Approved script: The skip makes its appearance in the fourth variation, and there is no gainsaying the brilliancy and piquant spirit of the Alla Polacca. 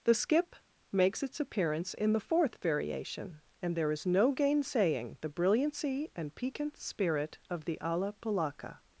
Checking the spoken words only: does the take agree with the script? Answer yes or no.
yes